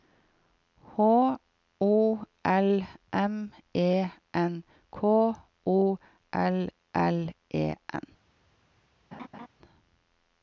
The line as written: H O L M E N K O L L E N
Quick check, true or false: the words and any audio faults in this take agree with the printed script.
false